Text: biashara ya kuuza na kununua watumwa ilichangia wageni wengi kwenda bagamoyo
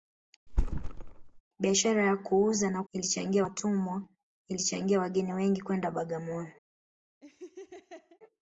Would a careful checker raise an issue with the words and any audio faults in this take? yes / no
yes